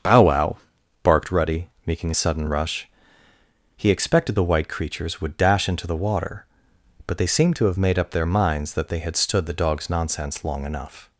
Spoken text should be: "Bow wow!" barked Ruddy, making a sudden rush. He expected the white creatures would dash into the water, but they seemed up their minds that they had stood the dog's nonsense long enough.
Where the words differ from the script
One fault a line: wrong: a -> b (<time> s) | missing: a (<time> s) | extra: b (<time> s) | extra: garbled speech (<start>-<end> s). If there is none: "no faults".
extra: to have made (7.6 s)